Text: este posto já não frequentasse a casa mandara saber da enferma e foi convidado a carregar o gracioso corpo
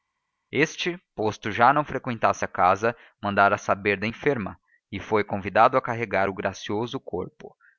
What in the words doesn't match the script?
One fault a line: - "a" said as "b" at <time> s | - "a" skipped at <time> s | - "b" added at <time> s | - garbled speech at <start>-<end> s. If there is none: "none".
none